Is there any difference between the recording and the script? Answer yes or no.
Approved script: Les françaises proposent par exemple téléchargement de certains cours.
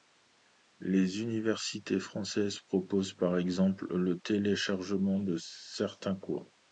yes